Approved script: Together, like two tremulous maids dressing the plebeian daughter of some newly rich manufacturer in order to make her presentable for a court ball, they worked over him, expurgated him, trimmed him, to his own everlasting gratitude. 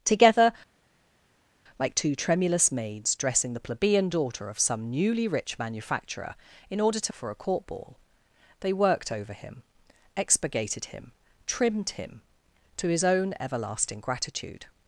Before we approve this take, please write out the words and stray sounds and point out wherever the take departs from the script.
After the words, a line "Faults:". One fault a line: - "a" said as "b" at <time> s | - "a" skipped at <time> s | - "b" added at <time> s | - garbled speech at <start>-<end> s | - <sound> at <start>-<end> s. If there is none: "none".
Together, like two tremulous maids dressing the plebeian daughter of some newly rich manufacturer in order to for a court ball, they worked over him, expurgated him, trimmed him, to his own everlasting gratitude.
Faults:
- "make her presentable" skipped at 7.1 s